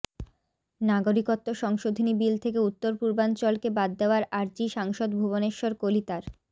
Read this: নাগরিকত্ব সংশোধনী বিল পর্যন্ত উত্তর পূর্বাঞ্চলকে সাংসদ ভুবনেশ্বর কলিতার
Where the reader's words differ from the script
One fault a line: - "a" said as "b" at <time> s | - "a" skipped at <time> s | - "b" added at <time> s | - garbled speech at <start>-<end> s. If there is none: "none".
- "পর্যন্ত" said as "থেকে" at 2.4 s
- "বাদ দেওয়ার আর্জি" added at 3.8 s